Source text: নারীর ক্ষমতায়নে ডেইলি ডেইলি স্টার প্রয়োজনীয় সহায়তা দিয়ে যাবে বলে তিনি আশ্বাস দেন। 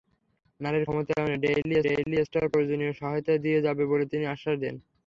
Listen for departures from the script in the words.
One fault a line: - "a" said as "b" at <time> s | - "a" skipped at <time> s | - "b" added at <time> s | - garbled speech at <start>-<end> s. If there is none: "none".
none